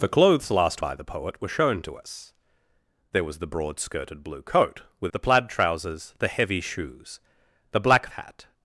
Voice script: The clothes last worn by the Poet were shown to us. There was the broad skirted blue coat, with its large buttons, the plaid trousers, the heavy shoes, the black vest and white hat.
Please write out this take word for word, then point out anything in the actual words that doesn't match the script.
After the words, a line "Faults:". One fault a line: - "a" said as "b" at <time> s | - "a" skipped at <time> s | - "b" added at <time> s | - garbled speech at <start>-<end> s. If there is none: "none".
The clothes last by the Poet were shown to us. There was the broad skirted blue coat, with the plaid trousers, the heavy shoes, the black hat.
Faults:
- "worn" skipped at 0.8 s
- "its large buttons" skipped at 5.1 s
- "vest and white" skipped at 8.1 s